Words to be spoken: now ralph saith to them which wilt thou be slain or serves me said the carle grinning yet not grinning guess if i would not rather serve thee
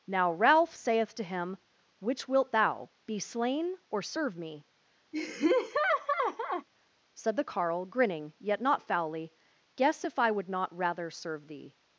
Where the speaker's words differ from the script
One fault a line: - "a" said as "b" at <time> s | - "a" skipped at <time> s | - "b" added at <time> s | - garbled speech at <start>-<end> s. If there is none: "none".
- "them" said as "him" at 1.2 s
- "serves" said as "serve" at 4.0 s
- "grinning" said as "foully" at 8.8 s